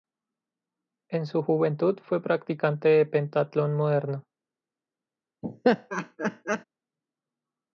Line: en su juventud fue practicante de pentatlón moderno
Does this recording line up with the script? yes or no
yes